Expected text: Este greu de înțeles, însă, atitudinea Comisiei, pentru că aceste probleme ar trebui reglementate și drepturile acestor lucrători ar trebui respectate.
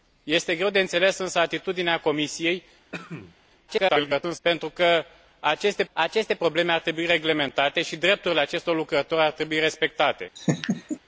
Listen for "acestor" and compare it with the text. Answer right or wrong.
right